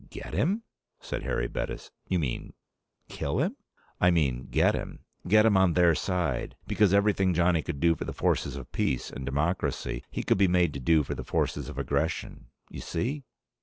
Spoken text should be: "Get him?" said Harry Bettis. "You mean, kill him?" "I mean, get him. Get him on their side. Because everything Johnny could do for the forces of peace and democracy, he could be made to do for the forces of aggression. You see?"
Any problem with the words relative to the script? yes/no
no